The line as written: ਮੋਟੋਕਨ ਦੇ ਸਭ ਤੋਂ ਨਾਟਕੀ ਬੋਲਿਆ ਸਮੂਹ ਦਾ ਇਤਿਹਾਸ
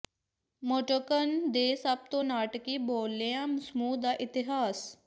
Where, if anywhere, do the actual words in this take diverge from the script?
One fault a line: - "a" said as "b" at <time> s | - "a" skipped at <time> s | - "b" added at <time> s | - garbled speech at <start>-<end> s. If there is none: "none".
none